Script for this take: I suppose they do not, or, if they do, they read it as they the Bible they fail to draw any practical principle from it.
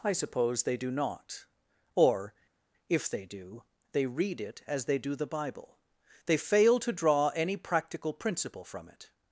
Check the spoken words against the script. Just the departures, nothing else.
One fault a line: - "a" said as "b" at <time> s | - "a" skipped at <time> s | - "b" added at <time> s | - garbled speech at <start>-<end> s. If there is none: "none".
- "do" added at 5.0 s